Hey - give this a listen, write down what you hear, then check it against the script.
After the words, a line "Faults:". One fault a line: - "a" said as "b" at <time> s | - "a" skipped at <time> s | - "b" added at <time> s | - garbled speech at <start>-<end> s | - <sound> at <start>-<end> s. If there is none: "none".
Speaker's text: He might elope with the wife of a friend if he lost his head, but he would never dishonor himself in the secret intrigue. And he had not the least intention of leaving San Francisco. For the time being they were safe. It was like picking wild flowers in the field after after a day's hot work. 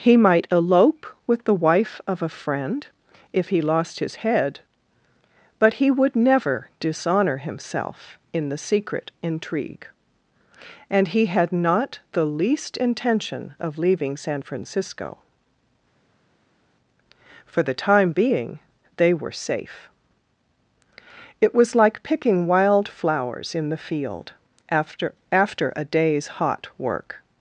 He might elope with the wife of a friend if he lost his head, but he would never dishonor himself in the secret intrigue. And he had not the least intention of leaving San Francisco. For the time being they were safe. It was like picking wild flowers in the field after after a day's hot work.
Faults:
none